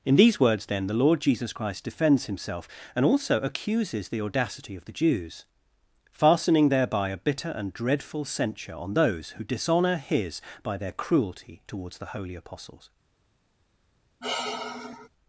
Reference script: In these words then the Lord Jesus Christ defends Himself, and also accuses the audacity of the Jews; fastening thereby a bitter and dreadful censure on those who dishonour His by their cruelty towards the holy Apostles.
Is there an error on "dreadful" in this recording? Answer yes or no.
no